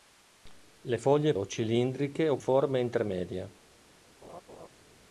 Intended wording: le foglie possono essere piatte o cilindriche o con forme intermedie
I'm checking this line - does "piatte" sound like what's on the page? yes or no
no